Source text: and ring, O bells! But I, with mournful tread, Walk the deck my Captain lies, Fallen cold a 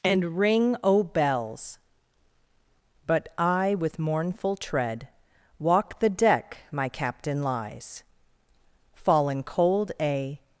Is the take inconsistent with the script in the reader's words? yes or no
no